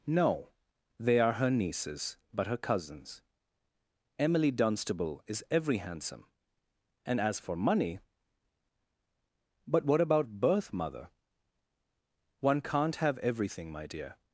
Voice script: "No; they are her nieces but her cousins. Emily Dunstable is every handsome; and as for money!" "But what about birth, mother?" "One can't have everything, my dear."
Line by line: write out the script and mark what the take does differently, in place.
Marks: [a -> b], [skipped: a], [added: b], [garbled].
"No; they are her nieces but her cousins. Emily Dunstable is every handsome; and as for money!" "But what about birth, mother?" "One can't have everything, my dear."